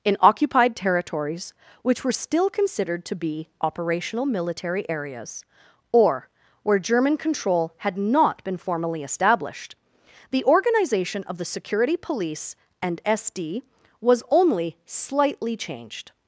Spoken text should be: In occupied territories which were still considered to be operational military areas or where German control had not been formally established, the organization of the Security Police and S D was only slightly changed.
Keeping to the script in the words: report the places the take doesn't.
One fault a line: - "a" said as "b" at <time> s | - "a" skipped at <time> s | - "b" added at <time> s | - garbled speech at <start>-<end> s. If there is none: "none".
none